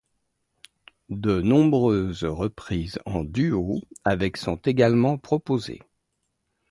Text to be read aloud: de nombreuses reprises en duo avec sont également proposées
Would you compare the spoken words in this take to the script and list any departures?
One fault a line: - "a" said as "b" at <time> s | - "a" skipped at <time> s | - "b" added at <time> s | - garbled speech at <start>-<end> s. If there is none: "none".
none